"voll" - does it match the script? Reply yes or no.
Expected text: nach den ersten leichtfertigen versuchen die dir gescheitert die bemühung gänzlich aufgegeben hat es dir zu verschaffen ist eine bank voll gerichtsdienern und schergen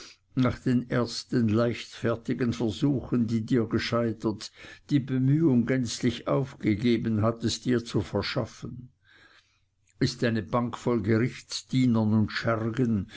yes